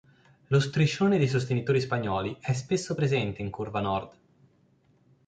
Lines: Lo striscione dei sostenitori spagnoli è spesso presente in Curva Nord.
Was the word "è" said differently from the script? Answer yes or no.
no